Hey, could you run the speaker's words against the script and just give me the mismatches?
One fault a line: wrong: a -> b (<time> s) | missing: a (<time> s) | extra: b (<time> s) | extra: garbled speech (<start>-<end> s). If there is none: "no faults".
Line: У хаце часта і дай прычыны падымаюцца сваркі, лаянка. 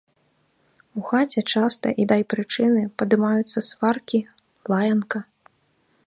no faults